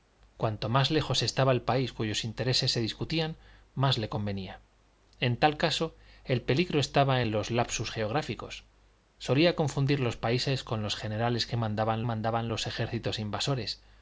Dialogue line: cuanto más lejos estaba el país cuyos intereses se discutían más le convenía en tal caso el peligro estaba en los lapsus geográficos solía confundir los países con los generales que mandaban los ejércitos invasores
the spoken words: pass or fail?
fail